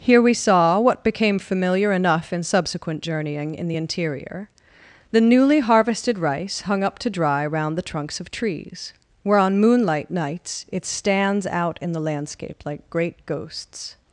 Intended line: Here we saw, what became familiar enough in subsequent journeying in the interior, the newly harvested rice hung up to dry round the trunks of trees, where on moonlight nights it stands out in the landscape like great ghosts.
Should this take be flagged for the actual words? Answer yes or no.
no